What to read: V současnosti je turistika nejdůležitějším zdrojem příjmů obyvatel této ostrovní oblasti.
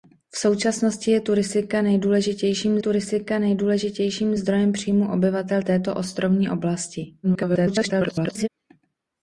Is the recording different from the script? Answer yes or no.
yes